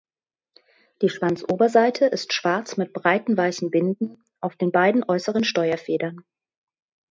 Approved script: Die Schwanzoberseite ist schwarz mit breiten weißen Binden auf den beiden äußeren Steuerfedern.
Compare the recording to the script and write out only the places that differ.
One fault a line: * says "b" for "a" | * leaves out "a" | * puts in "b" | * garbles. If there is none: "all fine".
all fine